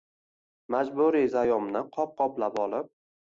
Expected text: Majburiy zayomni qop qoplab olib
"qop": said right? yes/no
yes